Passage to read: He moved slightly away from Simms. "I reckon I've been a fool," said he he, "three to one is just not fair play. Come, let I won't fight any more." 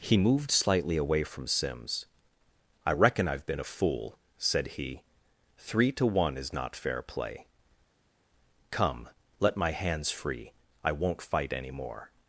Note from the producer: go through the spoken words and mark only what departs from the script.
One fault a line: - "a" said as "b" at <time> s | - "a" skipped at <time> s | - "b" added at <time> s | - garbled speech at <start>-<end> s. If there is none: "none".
- "he" skipped at 5.0 s
- "just" skipped at 6.5 s
- "my hands free" added at 9.6 s